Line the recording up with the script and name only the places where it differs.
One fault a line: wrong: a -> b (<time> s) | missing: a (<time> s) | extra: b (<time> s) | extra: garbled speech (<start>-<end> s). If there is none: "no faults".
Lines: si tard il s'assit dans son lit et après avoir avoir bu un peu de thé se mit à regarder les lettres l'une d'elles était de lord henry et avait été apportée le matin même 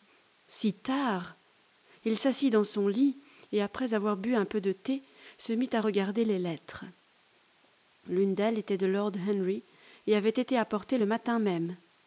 missing: avoir (4.2 s)